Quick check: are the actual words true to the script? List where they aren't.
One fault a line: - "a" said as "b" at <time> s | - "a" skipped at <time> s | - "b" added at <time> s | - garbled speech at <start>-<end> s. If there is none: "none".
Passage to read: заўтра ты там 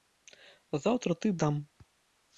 none